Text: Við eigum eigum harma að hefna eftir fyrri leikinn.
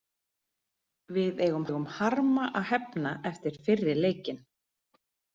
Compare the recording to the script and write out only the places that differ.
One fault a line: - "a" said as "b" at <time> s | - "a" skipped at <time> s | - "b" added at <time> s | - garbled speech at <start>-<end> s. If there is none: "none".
none